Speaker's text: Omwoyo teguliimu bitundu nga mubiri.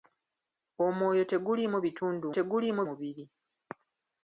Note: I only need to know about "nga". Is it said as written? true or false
false